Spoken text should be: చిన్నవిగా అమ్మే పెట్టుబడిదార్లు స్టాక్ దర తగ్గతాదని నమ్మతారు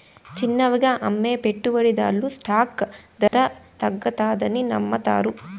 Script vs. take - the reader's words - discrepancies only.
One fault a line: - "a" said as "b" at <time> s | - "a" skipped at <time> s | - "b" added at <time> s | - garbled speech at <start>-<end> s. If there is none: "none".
none